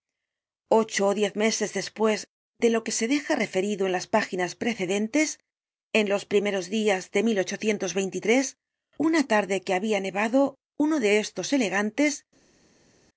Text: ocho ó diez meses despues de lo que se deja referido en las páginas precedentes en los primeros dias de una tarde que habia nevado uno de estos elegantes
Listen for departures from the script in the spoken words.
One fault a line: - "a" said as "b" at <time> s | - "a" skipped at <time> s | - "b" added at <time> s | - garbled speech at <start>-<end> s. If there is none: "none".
none